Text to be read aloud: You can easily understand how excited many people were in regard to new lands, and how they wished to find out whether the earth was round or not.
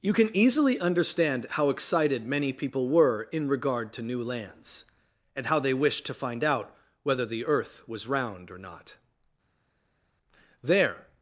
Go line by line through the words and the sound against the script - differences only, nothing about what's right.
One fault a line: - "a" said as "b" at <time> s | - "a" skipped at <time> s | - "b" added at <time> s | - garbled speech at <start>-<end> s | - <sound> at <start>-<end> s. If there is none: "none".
- "There" added at 10.6 s